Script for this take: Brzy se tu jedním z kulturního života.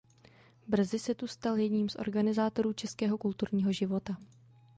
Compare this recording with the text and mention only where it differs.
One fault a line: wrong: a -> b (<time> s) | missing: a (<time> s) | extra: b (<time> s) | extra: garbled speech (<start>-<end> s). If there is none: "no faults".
extra: stal (1.3 s)
extra: organizátorů českého (1.9 s)